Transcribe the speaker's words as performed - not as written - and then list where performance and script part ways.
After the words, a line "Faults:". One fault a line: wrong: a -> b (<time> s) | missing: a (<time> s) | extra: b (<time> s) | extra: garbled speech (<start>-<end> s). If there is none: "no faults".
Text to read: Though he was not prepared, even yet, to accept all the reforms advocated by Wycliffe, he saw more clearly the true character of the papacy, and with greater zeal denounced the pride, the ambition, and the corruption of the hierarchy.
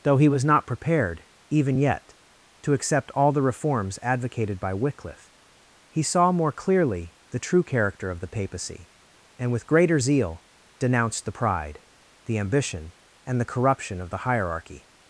Though he was not prepared, even yet, to accept all the reforms advocated by Wycliffe, he saw more clearly the true character of the papacy, and with greater zeal denounced the pride, the ambition, and the corruption of the hierarchy.
Faults:
no faults